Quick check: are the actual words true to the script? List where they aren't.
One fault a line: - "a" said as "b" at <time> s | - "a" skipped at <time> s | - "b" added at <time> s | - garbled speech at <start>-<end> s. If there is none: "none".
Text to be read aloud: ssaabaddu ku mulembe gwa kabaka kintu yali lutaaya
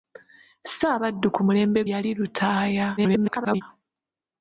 - "gwa kabaka kintu" skipped at 1.8 s
- garbled speech at 3.0-3.6 s